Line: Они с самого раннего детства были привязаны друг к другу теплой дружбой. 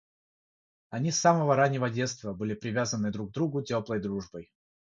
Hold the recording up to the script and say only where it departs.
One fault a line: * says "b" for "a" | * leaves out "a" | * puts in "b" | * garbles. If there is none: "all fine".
all fine